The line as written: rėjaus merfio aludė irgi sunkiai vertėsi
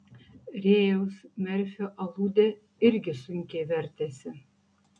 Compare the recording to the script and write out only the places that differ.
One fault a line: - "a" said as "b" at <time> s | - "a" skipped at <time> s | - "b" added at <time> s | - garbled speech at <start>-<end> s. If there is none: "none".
none